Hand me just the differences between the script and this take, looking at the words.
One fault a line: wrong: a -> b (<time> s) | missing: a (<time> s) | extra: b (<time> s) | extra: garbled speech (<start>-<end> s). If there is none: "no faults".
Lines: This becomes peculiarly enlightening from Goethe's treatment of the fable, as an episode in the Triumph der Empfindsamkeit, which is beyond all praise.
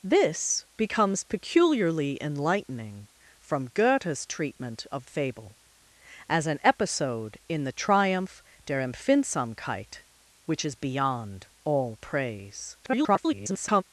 missing: the (5.0 s)
extra: garbled speech (12.8-13.8 s)